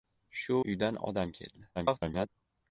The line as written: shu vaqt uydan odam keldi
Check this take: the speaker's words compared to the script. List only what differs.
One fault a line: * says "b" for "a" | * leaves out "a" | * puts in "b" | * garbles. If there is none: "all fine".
* leaves out "vaqt"
* garbles